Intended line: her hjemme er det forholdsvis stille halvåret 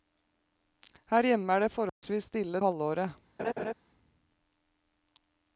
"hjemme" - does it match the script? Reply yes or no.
yes